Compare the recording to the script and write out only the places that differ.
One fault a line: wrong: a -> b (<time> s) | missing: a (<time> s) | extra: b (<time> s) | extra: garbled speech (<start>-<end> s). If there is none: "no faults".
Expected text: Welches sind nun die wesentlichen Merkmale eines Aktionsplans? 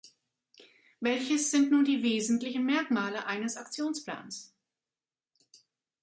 no faults